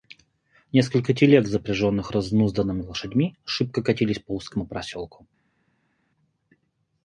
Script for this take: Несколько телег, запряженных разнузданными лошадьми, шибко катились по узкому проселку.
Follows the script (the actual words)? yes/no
yes